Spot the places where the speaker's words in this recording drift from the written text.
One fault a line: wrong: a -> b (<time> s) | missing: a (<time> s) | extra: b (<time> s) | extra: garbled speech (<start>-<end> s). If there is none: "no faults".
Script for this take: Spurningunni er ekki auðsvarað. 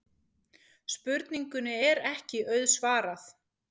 no faults